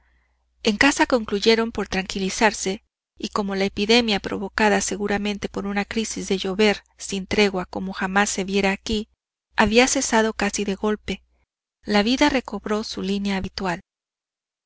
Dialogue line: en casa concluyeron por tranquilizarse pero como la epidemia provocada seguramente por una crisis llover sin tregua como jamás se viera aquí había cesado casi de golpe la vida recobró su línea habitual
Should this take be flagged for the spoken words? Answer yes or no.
yes